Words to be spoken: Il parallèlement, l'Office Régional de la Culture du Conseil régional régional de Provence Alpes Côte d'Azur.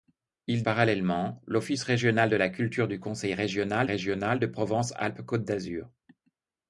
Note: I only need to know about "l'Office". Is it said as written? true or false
true